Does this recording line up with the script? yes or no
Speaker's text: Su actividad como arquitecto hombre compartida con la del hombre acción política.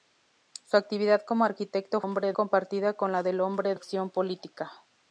yes